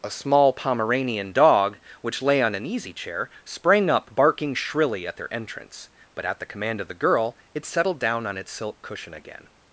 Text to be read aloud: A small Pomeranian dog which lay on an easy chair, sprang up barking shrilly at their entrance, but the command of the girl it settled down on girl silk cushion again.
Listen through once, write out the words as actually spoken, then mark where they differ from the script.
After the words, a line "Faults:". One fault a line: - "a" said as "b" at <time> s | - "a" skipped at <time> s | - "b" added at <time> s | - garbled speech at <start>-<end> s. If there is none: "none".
A small Pomeranian dog which lay on an easy chair, sprang up barking shrilly at their entrance, but at the command of the girl it settled down on its silk cushion again.
Faults:
- "at" added at 6.2 s
- "girl" said as "its" at 8.3 s